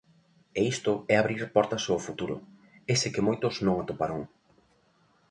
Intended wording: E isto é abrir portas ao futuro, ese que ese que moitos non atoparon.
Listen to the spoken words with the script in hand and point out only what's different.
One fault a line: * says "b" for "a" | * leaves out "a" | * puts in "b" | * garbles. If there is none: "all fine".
* leaves out "ese que"